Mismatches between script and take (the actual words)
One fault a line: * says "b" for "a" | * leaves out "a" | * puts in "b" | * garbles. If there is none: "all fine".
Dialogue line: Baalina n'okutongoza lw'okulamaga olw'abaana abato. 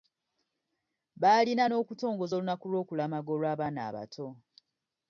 * puts in "olunaku"